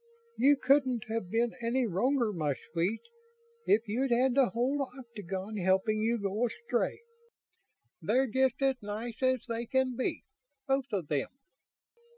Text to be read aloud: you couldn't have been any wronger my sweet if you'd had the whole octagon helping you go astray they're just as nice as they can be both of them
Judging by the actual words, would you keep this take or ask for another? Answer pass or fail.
pass